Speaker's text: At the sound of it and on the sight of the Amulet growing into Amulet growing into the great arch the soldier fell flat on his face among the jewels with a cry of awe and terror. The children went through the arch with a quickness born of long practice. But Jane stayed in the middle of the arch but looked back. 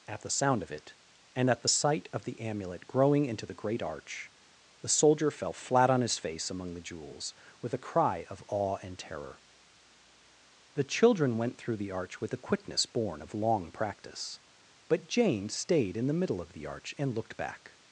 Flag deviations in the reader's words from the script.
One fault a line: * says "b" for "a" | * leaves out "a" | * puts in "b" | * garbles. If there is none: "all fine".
* says "at" for "on"
* leaves out "Amulet growing into"
* says "and" for "but"